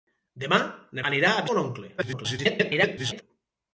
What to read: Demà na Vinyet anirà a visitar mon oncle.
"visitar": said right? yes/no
no